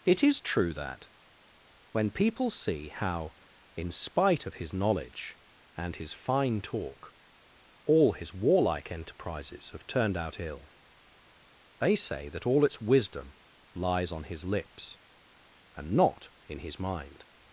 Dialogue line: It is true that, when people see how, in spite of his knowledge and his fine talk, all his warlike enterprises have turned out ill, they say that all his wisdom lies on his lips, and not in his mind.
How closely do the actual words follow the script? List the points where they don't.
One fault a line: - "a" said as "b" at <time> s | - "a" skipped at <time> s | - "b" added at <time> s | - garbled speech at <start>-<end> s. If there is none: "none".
- "his" said as "its" at 12.6 s